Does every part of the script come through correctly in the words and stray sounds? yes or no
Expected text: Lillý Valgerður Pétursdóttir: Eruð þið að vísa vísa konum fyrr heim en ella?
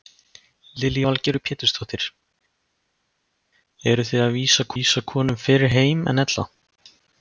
yes